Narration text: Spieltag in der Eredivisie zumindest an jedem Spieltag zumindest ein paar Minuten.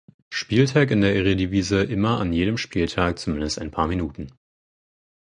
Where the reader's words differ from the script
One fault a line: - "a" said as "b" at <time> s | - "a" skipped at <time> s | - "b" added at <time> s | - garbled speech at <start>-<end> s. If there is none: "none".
- "zumindest" said as "immer" at 1.8 s